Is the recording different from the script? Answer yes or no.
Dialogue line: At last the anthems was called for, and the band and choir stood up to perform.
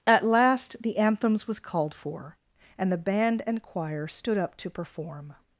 no